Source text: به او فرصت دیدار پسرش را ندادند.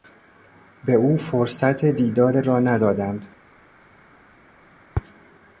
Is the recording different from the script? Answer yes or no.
yes